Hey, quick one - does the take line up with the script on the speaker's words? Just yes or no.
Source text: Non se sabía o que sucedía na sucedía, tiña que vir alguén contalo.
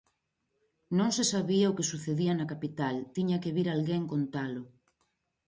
no